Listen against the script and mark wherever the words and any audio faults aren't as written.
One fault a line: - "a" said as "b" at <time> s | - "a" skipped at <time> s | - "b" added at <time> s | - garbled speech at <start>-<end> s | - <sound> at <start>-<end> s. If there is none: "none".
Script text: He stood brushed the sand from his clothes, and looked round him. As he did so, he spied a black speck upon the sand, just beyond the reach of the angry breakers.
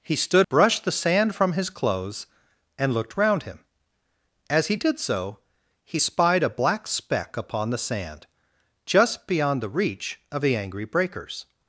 none